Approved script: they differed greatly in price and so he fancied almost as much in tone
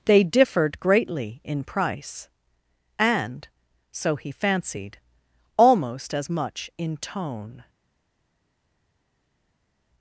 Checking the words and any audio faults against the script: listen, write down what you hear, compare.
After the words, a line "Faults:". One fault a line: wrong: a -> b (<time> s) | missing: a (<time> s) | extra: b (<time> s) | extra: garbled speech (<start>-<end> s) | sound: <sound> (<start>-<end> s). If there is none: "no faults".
they differed greatly in price and so he fancied almost as much in tone
Faults:
no faults